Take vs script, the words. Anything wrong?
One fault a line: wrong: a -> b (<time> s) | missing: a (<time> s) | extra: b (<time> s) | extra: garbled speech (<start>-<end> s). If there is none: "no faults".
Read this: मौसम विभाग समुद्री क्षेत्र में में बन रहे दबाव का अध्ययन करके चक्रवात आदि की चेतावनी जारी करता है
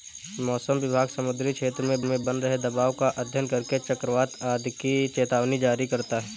no faults